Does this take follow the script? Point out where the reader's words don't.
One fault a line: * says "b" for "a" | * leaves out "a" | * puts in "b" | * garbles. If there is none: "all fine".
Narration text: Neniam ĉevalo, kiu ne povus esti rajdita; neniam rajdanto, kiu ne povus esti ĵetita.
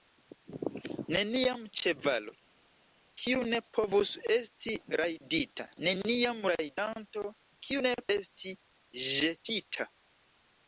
* leaves out "povus"